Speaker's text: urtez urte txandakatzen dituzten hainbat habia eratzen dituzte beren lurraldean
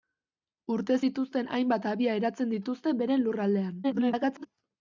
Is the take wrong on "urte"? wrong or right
wrong